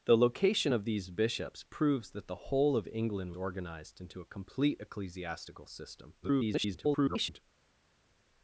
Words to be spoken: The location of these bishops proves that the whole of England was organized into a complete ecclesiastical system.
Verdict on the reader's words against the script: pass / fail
fail